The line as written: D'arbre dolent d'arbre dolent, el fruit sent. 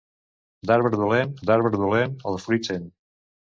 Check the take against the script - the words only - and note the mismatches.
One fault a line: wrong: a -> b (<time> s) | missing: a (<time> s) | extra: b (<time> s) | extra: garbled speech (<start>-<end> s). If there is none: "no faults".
no faults